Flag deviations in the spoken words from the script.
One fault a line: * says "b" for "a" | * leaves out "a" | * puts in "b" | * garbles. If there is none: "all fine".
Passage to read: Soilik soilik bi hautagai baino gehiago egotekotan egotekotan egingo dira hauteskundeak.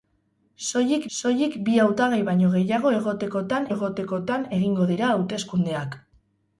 all fine